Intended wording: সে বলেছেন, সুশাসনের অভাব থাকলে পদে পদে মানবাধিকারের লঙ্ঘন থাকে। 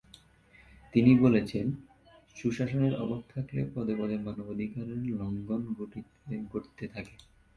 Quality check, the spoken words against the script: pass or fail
fail